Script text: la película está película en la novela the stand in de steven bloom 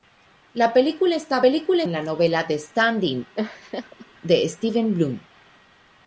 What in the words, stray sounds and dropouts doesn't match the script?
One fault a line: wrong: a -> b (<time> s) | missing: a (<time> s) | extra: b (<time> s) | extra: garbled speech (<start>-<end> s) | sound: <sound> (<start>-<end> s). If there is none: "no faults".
sound: laugh (3.3-4.1 s)